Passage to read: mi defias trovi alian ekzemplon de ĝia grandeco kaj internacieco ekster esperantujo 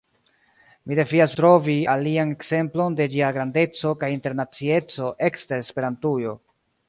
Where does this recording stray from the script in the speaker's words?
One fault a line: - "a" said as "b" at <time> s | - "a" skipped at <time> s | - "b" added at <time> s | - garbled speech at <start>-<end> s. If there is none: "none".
none